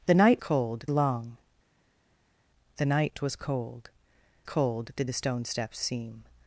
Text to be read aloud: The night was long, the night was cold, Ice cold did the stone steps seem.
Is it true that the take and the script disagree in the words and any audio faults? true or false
true